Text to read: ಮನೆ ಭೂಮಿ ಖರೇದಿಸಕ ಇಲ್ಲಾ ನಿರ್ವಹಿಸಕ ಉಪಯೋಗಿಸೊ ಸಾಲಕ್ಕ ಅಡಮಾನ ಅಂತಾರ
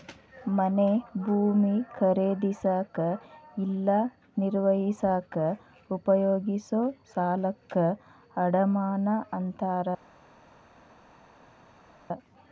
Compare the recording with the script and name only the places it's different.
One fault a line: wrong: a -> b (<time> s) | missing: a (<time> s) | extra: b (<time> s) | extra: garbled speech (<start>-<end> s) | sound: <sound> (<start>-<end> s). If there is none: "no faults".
no faults